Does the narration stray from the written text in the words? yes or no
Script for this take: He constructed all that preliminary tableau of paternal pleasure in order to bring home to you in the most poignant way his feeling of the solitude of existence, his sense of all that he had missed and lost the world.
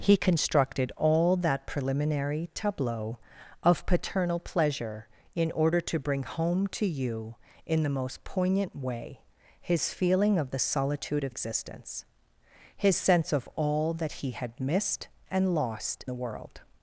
no